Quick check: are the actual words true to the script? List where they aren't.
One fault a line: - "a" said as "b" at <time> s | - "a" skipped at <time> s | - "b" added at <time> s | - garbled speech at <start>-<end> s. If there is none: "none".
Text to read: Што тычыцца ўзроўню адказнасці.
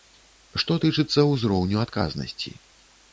none